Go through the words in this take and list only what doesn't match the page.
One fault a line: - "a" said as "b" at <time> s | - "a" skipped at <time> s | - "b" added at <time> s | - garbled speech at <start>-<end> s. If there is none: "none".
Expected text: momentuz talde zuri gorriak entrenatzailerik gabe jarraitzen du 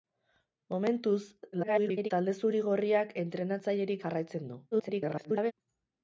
- garbled speech at 1.5-2.1 s
- "gabe" skipped at 4.0 s
- garbled speech at 4.7-5.5 s